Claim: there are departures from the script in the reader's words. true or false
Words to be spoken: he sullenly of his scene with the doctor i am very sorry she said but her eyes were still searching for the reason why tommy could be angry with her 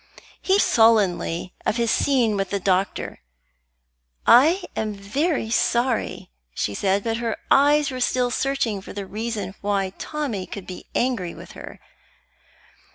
false